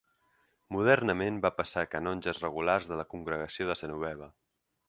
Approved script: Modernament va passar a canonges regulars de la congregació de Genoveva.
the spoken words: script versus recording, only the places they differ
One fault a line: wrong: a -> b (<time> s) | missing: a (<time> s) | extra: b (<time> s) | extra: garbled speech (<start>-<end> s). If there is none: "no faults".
no faults